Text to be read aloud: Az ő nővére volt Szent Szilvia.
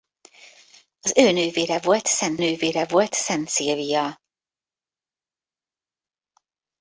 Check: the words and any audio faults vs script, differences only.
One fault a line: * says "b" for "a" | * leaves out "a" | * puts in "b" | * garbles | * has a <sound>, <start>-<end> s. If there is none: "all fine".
* puts in "nővére volt Szent"